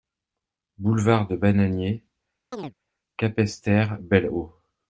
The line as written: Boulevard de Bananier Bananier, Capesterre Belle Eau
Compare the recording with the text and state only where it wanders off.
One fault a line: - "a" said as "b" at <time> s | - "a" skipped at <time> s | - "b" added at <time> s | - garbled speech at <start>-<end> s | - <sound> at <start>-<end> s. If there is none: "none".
- "Bananier" skipped at 2.0 s
- chirp at 2.5-2.7 s